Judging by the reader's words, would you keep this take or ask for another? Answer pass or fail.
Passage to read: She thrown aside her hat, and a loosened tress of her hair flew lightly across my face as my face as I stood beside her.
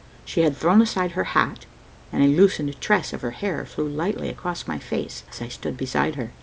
fail